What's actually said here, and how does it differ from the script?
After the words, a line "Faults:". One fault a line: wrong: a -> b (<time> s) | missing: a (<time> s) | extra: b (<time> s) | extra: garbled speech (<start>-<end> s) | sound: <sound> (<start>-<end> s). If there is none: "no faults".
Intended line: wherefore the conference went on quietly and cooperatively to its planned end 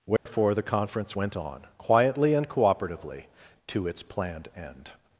wherefore the conference went on quietly and cooperatively to its planned end
Faults:
sound: dropout (0.2-0.3 s)